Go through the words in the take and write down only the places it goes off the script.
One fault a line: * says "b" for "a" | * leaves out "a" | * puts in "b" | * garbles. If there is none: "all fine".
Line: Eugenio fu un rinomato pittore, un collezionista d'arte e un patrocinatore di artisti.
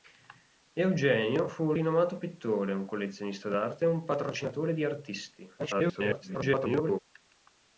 * garbles